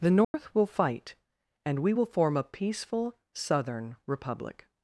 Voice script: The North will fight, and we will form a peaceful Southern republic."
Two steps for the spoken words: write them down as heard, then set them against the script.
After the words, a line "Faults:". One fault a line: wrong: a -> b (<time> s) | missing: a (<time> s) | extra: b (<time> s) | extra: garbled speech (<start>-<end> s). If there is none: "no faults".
The North will fight, and we will form a peaceful Southern republic."
Faults:
no faults